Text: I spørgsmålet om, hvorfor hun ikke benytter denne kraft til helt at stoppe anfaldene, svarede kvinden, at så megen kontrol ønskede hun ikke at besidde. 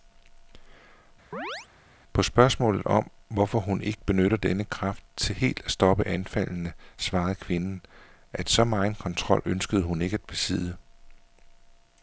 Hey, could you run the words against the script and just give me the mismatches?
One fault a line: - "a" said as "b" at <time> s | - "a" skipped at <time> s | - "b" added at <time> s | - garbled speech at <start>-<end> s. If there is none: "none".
- "I" said as "På" at 2.1 s